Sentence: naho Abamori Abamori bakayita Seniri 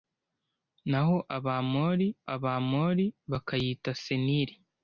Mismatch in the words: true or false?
false